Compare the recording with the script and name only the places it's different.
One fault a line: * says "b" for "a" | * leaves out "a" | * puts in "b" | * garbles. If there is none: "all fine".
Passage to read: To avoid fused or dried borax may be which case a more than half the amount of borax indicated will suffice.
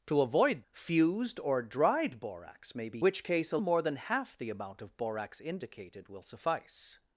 all fine